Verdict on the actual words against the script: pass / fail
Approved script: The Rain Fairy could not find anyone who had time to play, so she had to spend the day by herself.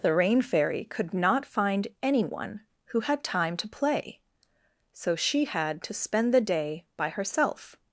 pass